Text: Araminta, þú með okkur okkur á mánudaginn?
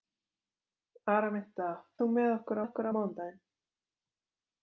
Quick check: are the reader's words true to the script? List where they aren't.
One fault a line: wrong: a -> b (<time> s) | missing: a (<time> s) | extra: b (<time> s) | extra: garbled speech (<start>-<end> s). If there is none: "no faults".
no faults